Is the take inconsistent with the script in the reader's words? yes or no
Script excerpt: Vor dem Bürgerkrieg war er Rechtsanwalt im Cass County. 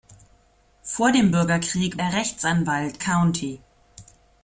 yes